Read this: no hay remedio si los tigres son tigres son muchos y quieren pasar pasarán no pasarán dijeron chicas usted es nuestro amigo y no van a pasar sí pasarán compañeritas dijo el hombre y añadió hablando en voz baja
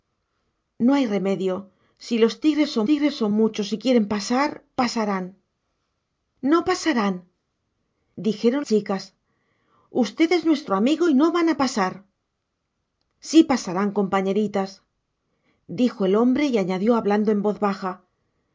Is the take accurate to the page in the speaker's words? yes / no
yes